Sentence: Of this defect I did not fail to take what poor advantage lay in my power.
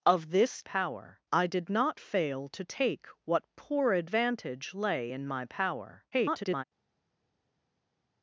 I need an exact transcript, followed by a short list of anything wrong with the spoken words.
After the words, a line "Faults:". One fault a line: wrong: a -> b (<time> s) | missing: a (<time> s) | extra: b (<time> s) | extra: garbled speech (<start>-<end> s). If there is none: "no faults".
Of this power I did not fail to take what poor advantage lay in my power. [garbled]
Faults:
wrong: defect -> power (0.6 s)
extra: garbled speech (6.1-6.6 s)